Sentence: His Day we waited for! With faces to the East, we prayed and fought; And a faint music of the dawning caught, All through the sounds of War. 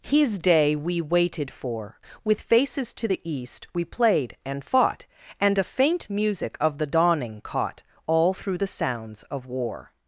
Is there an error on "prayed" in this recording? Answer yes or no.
yes